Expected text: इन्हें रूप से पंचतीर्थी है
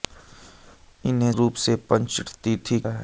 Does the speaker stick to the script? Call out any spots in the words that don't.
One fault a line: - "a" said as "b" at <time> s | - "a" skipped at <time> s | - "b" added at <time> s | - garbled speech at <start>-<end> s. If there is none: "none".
none